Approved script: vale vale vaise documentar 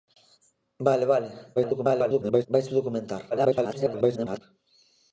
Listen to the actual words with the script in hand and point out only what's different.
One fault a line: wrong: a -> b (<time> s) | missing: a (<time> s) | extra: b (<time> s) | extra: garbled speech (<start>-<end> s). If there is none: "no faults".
extra: garbled speech (1.6-2.5 s)
extra: garbled speech (3.3-4.4 s)